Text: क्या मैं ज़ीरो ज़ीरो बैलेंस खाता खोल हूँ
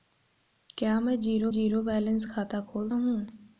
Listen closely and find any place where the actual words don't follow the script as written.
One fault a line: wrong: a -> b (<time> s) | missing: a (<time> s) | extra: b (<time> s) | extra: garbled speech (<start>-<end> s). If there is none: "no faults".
no faults